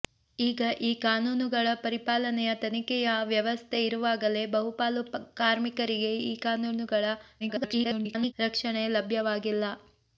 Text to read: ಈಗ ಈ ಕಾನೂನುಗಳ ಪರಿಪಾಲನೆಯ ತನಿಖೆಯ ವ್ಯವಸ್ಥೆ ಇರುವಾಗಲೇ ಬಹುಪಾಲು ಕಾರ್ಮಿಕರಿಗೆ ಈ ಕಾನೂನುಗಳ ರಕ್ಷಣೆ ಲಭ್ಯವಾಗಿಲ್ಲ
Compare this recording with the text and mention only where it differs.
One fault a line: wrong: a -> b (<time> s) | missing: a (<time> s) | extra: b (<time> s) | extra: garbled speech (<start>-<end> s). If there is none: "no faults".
extra: garbled speech (7.4-8.3 s)